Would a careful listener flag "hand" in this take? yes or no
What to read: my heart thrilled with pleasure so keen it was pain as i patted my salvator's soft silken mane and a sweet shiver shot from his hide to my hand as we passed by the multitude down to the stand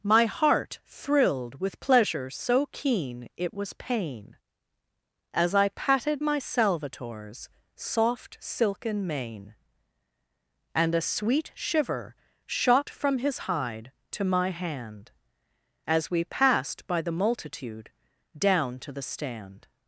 no